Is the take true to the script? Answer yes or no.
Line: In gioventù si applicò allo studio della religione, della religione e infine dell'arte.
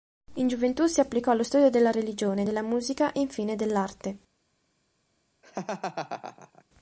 no